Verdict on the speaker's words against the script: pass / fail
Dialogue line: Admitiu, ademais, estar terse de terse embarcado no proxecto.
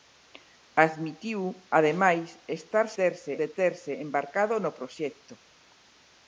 pass